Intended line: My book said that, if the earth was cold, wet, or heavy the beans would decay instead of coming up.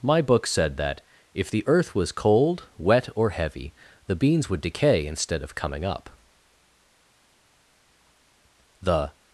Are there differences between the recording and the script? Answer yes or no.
yes